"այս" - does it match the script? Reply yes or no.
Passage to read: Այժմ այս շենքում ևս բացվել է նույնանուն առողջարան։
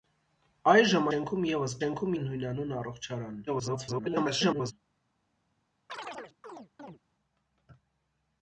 no